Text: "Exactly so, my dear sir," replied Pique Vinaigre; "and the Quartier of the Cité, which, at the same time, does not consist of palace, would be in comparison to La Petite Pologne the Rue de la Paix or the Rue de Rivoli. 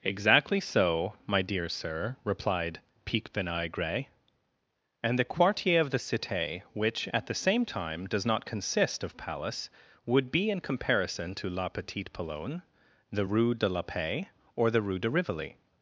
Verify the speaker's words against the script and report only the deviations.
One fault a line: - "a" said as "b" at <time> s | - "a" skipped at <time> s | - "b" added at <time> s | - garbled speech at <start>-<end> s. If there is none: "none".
none